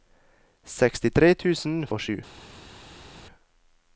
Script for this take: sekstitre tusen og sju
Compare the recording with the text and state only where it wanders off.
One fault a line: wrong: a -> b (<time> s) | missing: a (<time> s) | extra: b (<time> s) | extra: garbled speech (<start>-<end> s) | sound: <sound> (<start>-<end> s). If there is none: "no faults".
no faults